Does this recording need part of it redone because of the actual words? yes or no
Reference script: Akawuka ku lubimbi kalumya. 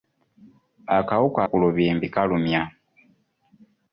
no